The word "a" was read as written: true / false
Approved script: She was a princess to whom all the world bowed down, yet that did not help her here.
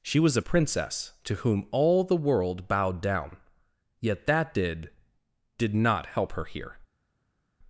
true